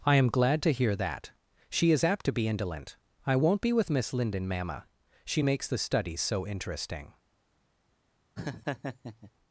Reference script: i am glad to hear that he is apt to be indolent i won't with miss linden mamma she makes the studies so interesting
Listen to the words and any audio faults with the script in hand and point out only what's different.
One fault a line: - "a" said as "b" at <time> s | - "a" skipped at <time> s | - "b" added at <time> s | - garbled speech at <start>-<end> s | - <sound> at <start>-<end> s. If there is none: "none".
- "he" said as "she" at 1.7 s
- "be" added at 3.6 s
- laugh at 8.4-9.3 s